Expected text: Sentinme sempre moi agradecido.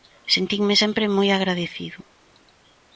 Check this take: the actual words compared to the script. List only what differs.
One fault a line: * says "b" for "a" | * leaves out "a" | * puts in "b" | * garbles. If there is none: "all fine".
all fine